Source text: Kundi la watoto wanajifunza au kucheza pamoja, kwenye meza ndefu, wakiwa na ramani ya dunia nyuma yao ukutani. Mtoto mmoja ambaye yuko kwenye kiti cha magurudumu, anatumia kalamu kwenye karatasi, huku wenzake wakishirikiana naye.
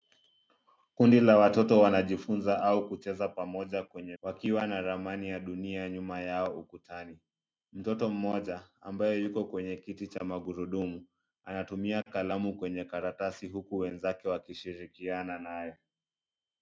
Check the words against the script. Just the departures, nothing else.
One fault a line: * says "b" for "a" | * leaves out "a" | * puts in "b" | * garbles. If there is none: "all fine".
* leaves out "meza ndefu"